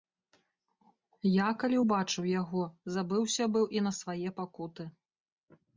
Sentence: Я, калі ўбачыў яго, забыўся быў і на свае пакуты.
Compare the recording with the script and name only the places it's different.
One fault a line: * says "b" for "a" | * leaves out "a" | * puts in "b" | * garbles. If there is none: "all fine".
all fine